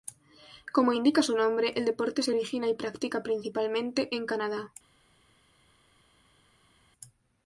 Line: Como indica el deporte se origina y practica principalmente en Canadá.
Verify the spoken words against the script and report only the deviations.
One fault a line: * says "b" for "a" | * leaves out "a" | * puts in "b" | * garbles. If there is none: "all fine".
* puts in "su nombre"